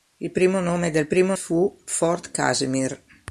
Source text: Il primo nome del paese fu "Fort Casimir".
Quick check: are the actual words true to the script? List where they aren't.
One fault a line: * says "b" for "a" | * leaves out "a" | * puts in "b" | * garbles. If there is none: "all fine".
* says "primo" for "paese"